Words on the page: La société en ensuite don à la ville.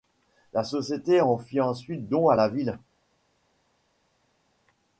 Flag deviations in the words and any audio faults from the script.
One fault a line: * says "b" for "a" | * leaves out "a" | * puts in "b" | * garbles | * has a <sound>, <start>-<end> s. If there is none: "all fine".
* puts in "fit"